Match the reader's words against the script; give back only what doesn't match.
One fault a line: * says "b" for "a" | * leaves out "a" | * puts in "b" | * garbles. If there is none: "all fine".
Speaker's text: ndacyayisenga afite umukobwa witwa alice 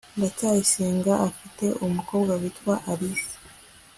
all fine